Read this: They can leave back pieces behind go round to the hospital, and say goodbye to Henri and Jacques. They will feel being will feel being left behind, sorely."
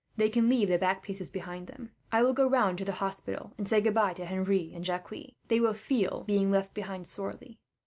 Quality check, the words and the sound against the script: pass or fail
fail